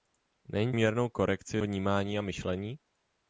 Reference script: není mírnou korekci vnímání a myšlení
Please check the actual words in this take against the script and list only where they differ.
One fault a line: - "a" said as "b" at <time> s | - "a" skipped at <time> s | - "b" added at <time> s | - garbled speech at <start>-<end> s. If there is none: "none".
none